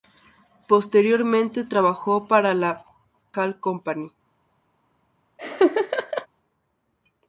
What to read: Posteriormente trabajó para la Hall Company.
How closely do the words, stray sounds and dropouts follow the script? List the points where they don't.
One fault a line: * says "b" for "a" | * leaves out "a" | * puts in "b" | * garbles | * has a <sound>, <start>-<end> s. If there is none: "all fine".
* has a laugh, 5.4-6.3 s